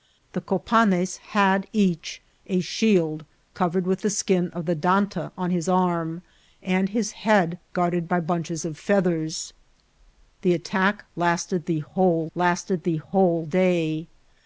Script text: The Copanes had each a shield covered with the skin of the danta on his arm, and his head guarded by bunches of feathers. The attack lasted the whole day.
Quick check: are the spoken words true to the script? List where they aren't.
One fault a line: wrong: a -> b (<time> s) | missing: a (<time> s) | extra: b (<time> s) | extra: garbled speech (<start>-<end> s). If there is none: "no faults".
extra: lasted the whole (12.3 s)